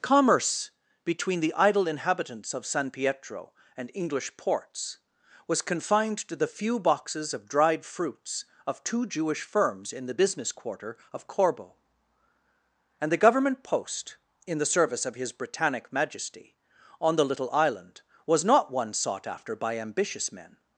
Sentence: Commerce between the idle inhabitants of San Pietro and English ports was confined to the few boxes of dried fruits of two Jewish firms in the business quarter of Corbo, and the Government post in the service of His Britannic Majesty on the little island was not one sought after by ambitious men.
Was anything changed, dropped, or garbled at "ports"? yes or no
no